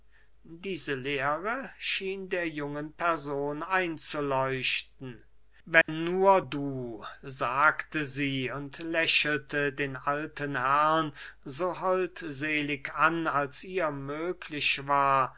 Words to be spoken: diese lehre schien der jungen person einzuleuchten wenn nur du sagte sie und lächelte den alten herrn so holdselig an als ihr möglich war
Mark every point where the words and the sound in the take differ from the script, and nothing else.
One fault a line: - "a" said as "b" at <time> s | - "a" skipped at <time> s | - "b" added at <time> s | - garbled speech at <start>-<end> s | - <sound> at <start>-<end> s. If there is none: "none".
- dropout at 5.8-5.9 s